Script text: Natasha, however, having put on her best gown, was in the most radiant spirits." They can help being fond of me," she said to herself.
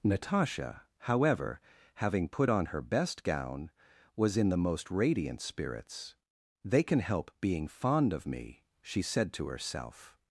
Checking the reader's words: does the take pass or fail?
pass